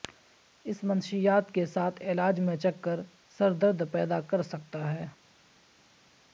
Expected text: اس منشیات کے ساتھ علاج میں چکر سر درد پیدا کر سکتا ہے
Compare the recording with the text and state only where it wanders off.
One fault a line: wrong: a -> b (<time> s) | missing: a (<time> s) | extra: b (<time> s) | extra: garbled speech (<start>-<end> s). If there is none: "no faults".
no faults